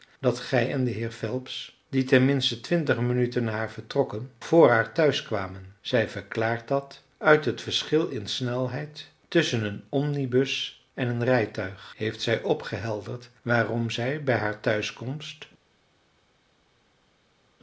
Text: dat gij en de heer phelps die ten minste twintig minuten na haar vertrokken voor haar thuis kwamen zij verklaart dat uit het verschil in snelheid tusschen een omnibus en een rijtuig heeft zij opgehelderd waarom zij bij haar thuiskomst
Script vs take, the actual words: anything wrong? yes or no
no